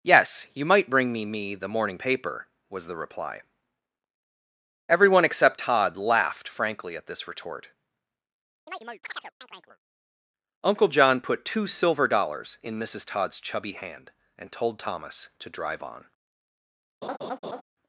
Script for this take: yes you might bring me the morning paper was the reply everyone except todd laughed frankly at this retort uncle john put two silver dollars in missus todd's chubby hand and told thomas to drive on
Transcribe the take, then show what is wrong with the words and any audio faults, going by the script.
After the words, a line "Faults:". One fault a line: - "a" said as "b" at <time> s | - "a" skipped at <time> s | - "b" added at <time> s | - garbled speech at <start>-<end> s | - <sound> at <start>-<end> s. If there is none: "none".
yes you might bring me me the morning paper was the reply everyone except todd laughed frankly at this retort uncle john put two silver dollars in missus todd's chubby hand and told thomas to drive on
Faults:
- "me" added at 1.2 s
- chirp at 8.7-9.8 s
- laugh at 17.0-17.6 s